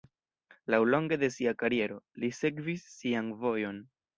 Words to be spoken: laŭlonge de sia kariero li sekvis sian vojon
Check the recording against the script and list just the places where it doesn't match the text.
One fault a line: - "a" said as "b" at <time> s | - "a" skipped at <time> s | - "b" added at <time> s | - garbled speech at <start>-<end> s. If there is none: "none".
none